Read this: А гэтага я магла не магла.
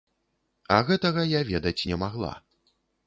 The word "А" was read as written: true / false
true